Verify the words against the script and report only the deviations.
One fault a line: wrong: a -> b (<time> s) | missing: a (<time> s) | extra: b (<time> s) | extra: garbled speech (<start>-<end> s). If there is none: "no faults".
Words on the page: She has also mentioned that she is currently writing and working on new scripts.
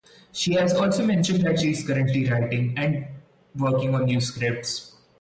no faults